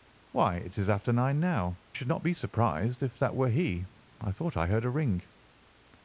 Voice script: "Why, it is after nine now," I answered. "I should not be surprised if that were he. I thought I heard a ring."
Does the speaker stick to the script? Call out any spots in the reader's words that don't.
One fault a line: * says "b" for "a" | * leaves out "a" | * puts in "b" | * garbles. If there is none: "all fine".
* leaves out "I answered I"